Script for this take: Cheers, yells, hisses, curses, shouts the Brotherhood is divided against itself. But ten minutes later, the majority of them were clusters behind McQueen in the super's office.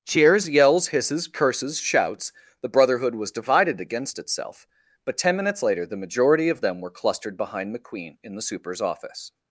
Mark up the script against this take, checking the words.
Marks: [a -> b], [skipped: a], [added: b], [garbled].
Cheers, yells, hisses, curses, shouts the Brotherhood [is -> was] divided against itself. But ten minutes later, the majority of them were [clusters -> clustered] behind McQueen in the super's office.